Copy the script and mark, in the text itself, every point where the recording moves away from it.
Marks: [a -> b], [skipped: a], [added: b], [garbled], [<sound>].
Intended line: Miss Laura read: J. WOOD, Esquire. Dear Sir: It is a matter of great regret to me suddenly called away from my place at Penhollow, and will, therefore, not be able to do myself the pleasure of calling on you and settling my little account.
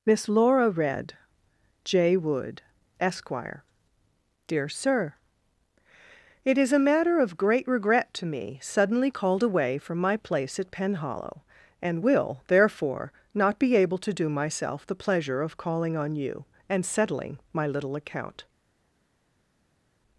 Miss Laura read: J. WOOD, Esquire. Dear Sir: It is a matter of great regret to me suddenly called away from my place at Penhollow, and will, therefore, not be able to do myself the pleasure of calling on you and settling my little account.